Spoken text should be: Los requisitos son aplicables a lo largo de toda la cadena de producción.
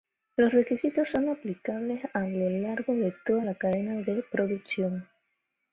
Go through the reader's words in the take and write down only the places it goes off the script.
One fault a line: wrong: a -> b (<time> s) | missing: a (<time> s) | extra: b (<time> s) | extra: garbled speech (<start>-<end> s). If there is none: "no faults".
no faults